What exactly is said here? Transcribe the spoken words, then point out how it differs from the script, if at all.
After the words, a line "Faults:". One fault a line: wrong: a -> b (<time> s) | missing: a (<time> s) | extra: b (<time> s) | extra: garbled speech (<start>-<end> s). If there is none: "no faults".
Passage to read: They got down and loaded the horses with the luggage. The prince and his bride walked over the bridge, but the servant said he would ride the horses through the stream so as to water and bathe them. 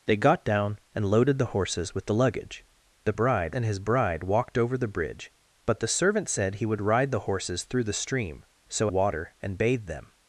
They got down and loaded the horses with the luggage. The bride and his bride walked over the bridge, but the servant said he would ride the horses through the stream so water and bathe them.
Faults:
wrong: prince -> bride (3.1 s)
missing: as to (8.9 s)